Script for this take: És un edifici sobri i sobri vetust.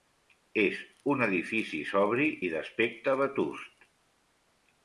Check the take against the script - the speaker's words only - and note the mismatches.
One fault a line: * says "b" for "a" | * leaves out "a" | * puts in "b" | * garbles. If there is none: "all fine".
* says "d'aspecte" for "sobri"